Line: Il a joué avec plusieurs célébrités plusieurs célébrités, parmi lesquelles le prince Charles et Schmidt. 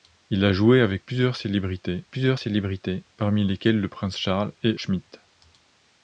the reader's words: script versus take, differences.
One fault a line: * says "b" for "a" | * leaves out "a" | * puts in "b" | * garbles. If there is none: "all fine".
all fine